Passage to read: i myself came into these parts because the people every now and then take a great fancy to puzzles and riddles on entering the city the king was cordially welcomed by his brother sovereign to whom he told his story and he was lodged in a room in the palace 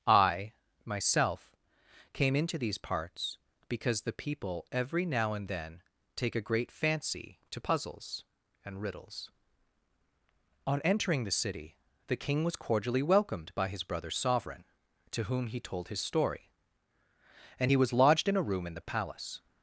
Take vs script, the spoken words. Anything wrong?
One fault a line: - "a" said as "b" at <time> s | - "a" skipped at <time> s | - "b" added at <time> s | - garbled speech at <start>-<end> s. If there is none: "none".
none